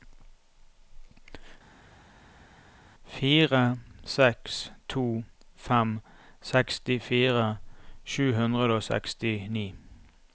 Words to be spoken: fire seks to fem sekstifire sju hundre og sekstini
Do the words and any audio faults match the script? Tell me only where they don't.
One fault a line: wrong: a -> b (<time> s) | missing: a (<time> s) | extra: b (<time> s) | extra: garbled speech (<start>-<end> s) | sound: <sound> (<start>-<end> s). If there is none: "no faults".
no faults